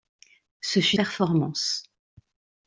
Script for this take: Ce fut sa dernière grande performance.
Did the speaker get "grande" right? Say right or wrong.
wrong